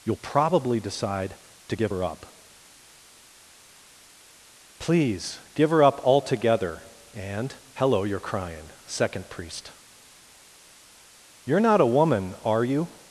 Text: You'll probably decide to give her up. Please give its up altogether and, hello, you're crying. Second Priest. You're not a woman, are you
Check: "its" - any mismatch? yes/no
yes